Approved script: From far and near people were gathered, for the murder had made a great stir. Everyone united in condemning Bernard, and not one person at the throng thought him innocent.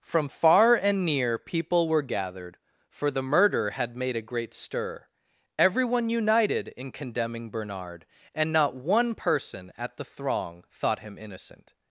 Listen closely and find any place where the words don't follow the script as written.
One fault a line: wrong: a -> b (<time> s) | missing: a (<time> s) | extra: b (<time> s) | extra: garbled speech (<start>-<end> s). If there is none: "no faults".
no faults